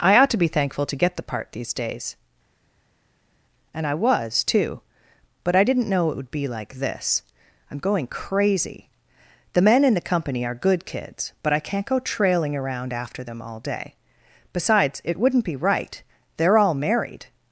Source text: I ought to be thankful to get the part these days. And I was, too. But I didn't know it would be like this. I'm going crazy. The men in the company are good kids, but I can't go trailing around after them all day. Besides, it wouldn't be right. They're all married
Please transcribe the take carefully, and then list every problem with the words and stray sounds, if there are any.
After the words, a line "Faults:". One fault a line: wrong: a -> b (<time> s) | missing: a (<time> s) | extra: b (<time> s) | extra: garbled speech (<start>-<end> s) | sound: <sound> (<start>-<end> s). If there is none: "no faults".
I ought to be thankful to get the part these days. And I was, too. But I didn't know it would be like this. I'm going crazy. The men in the company are good kids, but I can't go trailing around after them all day. Besides, it wouldn't be right. They're all married
Faults:
no faults